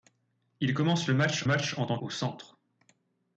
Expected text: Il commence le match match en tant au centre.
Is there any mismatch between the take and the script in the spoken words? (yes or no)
no